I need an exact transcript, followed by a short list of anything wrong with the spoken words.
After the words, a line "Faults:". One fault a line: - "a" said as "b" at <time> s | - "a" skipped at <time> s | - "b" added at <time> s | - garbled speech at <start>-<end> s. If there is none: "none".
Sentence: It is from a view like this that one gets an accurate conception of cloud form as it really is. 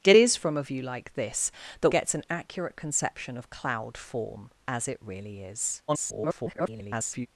It is from a view like this that gets an accurate conception of cloud form as it really is. [garbled]
Faults:
- "one" skipped at 1.9 s
- garbled speech at 5.9-7.3 s